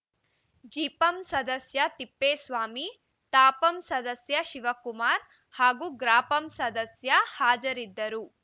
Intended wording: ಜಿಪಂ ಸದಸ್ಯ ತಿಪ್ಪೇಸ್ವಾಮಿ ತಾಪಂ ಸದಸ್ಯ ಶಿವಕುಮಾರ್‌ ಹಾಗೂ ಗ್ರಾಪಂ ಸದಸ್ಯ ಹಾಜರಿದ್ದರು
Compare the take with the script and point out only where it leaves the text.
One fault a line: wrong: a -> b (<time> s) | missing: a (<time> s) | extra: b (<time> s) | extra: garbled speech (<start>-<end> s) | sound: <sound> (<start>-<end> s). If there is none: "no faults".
no faults